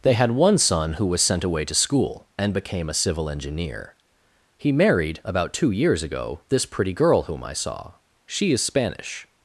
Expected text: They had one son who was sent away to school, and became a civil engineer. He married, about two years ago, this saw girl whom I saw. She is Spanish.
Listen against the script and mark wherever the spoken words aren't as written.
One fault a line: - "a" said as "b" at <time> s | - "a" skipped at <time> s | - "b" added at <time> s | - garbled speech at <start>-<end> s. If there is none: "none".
- "saw" said as "pretty" at 6.6 s